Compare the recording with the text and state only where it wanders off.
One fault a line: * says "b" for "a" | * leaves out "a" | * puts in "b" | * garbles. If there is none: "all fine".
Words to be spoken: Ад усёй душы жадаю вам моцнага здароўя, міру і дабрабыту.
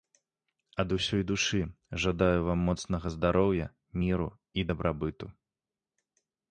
all fine